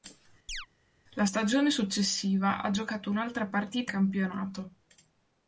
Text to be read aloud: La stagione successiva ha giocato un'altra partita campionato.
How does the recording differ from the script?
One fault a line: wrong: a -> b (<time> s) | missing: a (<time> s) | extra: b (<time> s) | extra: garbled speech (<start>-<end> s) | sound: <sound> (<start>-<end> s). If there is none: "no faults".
sound: chirp (0.5-0.7 s)